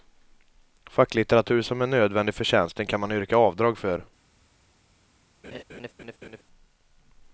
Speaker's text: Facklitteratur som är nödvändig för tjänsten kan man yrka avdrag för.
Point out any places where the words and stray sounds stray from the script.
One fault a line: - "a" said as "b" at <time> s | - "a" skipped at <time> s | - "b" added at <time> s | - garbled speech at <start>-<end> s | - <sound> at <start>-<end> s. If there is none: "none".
- laugh at 5.4-6.4 s